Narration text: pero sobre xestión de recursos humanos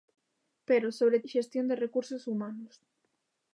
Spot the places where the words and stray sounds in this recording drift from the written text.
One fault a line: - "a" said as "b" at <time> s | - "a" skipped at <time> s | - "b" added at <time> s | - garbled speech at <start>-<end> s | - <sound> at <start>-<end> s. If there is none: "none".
none